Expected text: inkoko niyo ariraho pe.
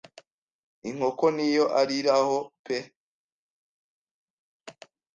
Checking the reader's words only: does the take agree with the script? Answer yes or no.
yes